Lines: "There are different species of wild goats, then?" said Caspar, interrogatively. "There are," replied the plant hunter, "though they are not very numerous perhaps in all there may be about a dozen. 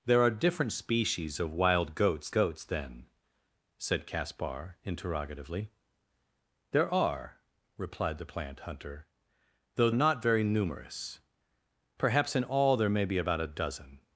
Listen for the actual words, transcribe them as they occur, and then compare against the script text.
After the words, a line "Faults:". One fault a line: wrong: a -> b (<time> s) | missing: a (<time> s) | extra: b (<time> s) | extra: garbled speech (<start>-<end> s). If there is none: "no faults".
"There are different species of wild goats goats, then?" said Caspar, interrogatively. "There are," replied the plant hunter, "though not very numerous perhaps in all there may be about a dozen.
Faults:
extra: goats (2.3 s)
missing: they are (9.9 s)